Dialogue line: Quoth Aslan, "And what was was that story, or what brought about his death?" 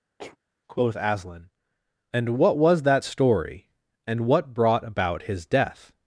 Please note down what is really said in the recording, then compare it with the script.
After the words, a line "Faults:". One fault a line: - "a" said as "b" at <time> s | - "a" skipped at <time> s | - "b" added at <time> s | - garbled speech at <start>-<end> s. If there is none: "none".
Quoth Aslan, "And what was that story, and what brought about his death?"
Faults:
- "was" skipped at 2.8 s
- "or" said as "and" at 4.1 s